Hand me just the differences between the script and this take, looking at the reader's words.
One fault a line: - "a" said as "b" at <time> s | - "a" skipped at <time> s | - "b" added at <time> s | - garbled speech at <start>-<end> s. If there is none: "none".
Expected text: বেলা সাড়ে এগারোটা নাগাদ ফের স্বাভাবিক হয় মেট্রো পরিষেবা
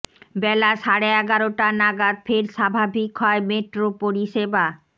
none